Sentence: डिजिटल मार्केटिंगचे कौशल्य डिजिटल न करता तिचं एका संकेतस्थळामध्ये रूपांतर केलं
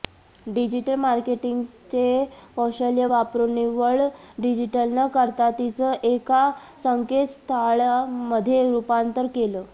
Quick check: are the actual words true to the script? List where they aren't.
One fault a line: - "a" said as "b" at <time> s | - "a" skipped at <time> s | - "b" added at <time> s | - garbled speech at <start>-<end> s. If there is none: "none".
- "वापरून निव्वळ" added at 3.1 s